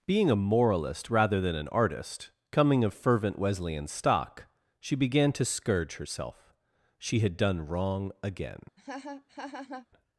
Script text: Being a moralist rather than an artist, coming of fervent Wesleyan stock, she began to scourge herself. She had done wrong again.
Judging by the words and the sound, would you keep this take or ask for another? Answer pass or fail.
fail